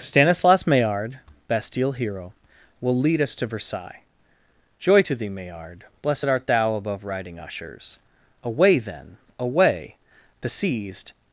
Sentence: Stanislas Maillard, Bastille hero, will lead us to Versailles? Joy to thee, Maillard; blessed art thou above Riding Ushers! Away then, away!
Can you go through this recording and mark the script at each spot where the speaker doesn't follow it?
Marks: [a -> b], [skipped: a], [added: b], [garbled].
Stanislas Maillard, Bastille hero, will lead us to Versailles? Joy to thee, Maillard; blessed art thou above Riding Ushers! Away then, away! [added: The seized]